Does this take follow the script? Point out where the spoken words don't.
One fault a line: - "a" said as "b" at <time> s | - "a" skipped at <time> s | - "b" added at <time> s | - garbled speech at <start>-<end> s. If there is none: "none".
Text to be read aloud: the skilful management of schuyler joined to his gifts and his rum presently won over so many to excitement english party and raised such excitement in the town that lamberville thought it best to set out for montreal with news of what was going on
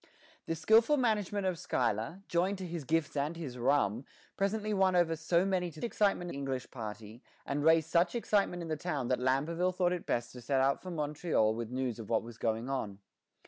none